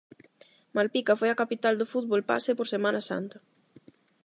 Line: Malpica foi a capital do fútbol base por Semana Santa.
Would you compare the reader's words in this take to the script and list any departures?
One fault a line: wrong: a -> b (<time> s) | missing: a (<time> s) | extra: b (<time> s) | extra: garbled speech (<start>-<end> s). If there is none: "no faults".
no faults